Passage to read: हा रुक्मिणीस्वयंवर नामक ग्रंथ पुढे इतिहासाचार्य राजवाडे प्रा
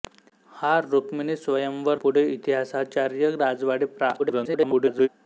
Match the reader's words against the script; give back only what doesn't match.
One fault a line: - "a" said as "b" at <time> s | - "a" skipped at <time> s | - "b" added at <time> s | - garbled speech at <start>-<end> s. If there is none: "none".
- "नामक ग्रंथ" skipped at 2.0 s
- garbled speech at 4.2-5.1 s